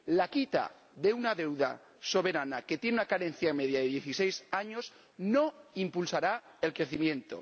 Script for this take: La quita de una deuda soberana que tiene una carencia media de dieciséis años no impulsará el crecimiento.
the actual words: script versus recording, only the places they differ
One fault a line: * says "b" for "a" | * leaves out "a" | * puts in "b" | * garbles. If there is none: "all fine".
all fine